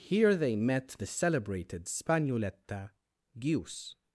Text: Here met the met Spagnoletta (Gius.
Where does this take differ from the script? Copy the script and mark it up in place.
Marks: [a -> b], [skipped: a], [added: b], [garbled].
Here [added: they] met the [met -> celebrated] Spagnoletta (Gius.